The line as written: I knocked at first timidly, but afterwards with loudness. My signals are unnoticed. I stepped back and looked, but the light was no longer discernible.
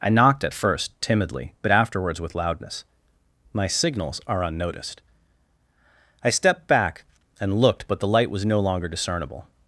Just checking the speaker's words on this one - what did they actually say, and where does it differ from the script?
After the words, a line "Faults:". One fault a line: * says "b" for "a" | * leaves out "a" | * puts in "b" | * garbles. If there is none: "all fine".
I knocked at first timidly, but afterwards with loudness. My signals are unnoticed. I stepped back and looked, but the light was no longer discernible.
Faults:
all fine